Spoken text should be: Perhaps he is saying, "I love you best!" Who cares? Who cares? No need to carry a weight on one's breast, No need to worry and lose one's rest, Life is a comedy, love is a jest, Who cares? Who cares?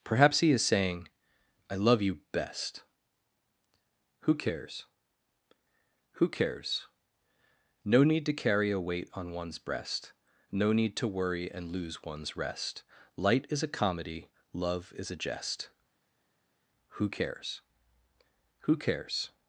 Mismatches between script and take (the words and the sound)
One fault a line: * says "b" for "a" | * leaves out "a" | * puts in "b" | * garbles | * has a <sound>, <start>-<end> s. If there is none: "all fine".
* says "Light" for "Life"